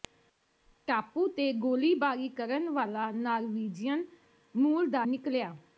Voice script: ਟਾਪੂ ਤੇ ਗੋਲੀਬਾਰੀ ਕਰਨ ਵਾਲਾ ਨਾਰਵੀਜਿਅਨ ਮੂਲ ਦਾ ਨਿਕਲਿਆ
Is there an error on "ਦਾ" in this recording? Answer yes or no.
no